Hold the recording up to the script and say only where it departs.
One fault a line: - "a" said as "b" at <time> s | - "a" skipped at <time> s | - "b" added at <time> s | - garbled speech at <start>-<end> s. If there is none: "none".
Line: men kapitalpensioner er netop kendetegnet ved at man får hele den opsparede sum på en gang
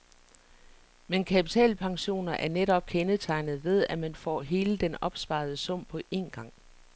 none